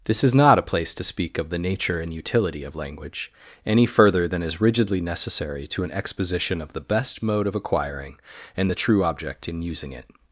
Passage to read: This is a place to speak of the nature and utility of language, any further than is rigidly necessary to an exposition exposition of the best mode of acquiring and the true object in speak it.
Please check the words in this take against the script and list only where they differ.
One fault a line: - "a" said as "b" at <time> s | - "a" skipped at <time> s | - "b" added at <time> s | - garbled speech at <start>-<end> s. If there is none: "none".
- "not" added at 0.3 s
- "exposition" skipped at 6.6 s
- "speak" said as "using" at 9.6 s